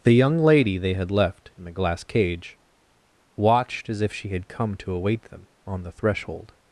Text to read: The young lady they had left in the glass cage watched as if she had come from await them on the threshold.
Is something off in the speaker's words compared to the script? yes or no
yes